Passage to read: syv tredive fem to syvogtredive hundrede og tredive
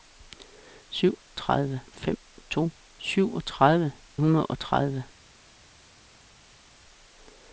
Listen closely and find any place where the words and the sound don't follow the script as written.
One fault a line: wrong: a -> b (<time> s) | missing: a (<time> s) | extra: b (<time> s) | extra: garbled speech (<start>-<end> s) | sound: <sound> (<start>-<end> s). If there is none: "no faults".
no faults